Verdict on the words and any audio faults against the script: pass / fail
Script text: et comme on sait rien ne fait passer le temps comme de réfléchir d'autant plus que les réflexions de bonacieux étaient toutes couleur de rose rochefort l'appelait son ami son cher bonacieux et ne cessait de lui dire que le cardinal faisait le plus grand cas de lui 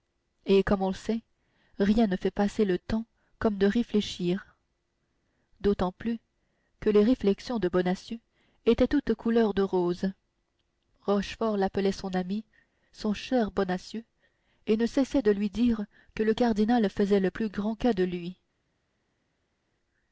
pass